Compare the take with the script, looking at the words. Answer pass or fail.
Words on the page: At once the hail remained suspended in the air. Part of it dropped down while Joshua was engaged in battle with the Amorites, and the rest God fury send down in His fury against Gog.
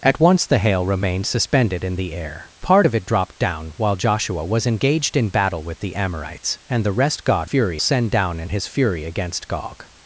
pass